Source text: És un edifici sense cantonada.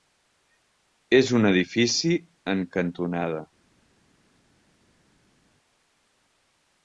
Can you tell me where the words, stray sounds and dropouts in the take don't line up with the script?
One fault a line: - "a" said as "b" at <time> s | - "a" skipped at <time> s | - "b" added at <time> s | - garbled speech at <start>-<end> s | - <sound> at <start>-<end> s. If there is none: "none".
- "sense" said as "en" at 2.5 s